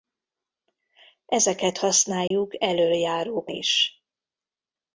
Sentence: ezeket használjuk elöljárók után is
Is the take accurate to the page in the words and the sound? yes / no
no